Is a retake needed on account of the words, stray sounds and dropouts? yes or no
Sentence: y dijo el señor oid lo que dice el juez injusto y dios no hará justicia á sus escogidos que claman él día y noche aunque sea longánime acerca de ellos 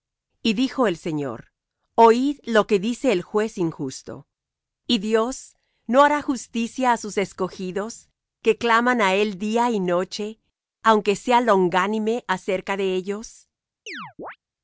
yes